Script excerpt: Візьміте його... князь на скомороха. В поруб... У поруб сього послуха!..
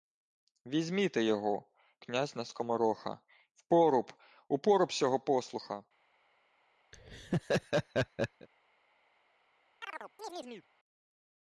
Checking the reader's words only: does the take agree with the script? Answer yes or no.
yes